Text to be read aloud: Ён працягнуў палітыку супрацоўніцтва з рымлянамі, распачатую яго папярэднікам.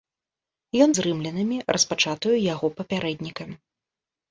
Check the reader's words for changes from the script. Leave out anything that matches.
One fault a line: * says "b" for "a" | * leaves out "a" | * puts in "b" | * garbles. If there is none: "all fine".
* leaves out "працягнуў палітыку супрацоўніцтва"